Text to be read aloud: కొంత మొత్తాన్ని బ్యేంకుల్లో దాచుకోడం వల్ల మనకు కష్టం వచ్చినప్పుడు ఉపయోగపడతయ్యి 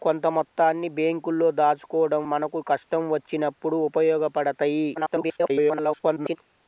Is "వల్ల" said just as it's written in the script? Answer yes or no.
no